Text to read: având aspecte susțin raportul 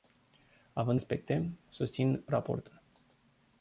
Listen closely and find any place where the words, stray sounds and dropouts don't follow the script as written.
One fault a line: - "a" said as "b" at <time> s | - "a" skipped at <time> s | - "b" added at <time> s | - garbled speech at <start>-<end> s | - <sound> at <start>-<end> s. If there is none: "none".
none